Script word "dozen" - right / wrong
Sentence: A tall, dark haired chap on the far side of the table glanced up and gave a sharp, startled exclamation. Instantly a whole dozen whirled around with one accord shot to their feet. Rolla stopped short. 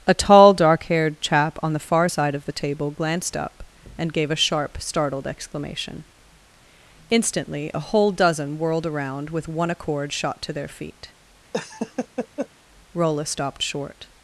right